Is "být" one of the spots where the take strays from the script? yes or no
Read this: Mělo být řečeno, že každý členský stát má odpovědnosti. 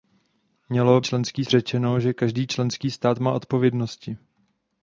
yes